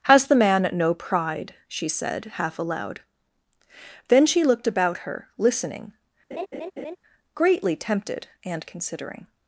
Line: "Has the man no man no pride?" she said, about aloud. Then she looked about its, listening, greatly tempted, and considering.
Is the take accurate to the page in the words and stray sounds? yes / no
no